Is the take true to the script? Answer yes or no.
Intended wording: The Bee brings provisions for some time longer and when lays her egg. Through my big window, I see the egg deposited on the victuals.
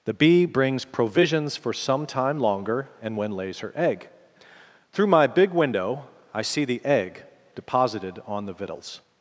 yes